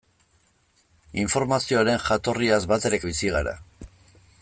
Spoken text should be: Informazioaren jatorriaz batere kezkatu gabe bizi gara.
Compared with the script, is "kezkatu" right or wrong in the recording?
wrong